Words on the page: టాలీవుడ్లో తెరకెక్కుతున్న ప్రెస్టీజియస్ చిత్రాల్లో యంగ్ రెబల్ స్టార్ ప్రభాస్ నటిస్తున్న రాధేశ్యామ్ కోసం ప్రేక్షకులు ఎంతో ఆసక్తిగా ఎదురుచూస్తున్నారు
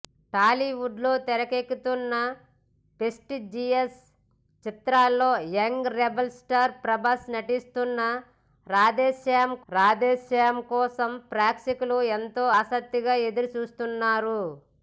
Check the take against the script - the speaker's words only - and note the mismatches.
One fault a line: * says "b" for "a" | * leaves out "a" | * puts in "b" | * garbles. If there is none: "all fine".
* puts in "రాధేశ్యామ్"